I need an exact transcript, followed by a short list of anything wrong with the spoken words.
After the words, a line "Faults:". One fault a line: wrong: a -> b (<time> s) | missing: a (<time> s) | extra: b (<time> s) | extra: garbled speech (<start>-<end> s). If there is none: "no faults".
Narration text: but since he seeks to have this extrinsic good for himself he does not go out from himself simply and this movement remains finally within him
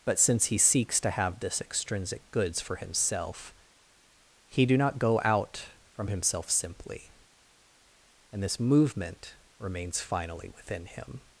but since he seeks to have this extrinsic goods for himself he do not go out from himself simply and this movement remains finally within him
Faults:
wrong: good -> goods (2.3 s)
wrong: does -> do (4.7 s)